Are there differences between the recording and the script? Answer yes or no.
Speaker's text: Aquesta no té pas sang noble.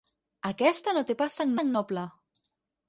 yes